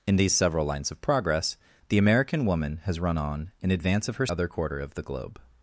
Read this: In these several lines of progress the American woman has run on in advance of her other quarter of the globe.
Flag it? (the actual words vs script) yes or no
no